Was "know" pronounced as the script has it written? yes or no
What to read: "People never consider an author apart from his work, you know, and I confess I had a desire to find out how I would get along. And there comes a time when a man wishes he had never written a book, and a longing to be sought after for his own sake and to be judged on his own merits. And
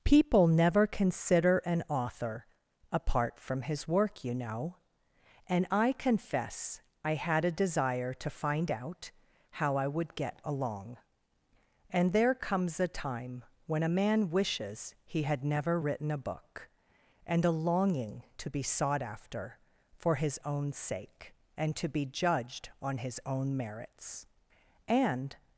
yes